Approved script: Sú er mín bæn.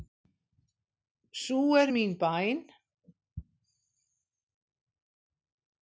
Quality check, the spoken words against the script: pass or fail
pass